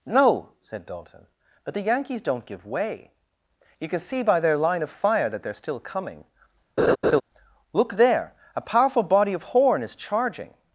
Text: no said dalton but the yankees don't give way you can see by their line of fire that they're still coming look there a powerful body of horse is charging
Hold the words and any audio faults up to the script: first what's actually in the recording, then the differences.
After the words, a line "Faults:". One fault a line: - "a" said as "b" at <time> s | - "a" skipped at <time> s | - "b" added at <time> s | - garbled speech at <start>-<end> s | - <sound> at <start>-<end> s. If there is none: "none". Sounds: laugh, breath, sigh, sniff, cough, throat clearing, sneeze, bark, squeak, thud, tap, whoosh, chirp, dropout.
no said dalton but the yankees don't give way you can see by their line of fire that they're still coming look there a powerful body of horn is charging
Faults:
- laugh at 6.8-7.2 s
- "horse" said as "horn" at 9.4 s